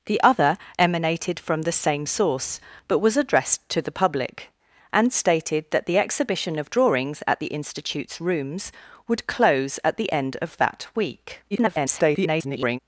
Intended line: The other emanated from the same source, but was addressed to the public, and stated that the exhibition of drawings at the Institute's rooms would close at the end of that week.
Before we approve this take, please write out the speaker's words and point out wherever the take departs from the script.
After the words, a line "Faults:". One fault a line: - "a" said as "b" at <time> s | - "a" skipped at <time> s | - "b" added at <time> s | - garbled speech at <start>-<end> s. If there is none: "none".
The other emanated from the same source, but was addressed to the public, and stated that the exhibition of drawings at the Institute's rooms would close at the end of that week. [garbled]
Faults:
- garbled speech at 11.5-12.8 s